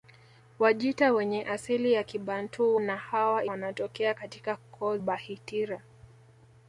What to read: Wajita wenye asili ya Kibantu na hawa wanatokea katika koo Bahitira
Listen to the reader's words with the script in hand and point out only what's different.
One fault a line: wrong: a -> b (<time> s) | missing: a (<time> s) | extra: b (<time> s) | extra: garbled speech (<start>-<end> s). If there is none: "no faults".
no faults